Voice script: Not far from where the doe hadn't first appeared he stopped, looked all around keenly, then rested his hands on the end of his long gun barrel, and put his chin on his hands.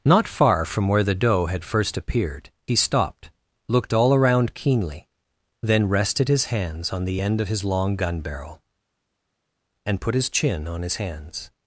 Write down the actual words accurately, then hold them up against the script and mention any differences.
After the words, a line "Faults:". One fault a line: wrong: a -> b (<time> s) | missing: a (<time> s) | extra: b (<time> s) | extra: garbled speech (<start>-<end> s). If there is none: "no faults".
Not far from where the doe had first appeared he stopped, looked all around keenly, then rested his hands on the end of his long gun barrel, and put his chin on his hands.
Faults:
wrong: hadn't -> had (1.4 s)